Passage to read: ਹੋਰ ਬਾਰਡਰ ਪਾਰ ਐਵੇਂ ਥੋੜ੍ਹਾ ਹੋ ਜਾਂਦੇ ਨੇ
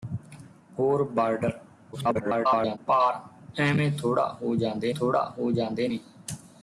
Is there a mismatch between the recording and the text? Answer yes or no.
yes